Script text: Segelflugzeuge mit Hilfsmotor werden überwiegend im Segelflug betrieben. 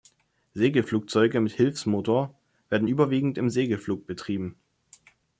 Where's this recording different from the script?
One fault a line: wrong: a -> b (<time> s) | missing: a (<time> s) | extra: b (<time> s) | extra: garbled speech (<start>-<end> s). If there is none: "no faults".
no faults